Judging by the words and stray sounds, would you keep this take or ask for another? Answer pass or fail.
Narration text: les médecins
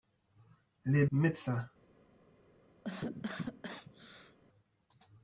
fail